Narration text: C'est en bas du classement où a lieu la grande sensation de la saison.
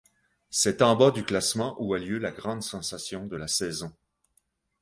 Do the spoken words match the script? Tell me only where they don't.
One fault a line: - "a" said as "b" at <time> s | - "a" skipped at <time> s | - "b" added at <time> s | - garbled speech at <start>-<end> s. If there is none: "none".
none